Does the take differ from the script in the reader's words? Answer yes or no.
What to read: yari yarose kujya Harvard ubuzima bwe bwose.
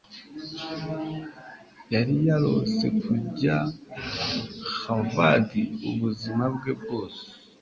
no